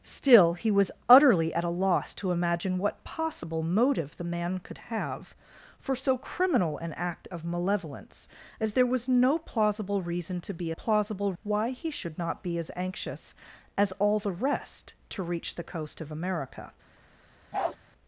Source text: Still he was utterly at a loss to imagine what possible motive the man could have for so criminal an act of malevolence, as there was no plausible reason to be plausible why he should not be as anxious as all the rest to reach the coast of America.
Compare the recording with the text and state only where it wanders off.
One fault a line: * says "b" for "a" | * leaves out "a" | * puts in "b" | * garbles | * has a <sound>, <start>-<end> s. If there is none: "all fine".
* has a bark, 17.5-17.8 s